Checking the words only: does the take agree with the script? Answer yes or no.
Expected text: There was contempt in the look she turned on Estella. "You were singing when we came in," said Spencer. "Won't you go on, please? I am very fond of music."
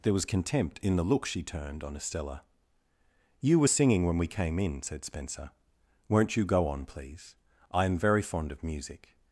yes